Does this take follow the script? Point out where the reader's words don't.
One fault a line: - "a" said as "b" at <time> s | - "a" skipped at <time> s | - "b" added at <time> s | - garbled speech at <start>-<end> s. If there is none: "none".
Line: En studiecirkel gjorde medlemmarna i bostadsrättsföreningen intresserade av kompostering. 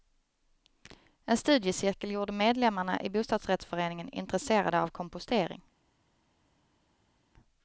none